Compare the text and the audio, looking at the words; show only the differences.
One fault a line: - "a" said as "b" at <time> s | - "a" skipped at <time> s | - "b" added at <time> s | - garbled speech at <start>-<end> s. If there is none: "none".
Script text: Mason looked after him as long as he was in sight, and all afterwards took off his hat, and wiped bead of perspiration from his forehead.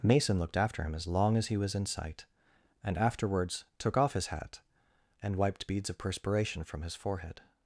- "all" skipped at 3.0 s
- "bead" said as "beads" at 5.7 s